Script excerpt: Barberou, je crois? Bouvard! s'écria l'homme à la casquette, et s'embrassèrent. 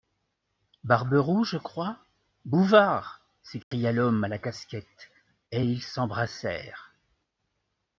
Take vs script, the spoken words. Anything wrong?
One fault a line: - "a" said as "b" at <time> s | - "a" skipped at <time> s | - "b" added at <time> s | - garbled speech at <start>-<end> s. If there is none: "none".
- "ils" added at 5.6 s